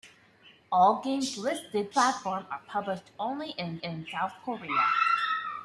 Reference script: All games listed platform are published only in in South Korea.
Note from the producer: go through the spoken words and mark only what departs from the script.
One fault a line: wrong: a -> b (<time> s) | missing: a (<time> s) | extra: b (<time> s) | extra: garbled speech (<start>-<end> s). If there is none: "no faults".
no faults